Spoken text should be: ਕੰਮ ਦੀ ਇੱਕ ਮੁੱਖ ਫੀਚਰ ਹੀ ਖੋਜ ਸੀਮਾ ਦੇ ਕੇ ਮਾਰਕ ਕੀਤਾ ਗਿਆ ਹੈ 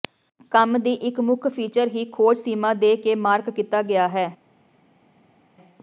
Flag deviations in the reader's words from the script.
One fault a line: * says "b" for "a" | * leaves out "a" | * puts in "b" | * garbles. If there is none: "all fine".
all fine